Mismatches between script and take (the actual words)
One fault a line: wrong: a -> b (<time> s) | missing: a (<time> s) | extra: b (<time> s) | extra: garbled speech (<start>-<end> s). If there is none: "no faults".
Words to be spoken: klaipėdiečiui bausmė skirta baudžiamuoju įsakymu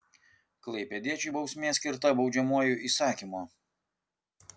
no faults